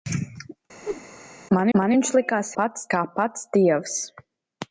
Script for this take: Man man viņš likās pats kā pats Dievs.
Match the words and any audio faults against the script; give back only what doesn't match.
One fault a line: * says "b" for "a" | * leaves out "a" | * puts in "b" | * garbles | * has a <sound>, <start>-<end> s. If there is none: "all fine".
* has a whoosh, 0.8-1.1 s